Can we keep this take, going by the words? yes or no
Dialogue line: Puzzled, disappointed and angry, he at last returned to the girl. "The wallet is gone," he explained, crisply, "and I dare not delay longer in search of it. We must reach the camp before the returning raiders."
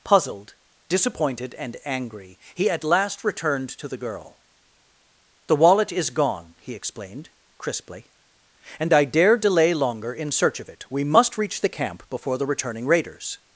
no